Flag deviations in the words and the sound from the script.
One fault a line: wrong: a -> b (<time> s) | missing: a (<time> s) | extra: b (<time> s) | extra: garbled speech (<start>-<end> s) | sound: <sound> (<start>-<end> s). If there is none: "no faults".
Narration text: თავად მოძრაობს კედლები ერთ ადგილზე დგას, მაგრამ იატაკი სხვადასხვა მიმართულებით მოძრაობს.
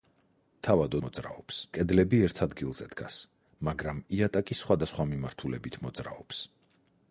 no faults